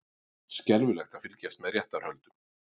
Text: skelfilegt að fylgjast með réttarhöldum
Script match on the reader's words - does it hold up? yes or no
yes